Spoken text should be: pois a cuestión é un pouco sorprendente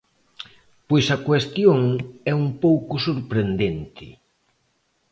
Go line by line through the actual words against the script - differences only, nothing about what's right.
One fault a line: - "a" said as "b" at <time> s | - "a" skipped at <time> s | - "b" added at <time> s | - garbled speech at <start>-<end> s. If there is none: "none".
none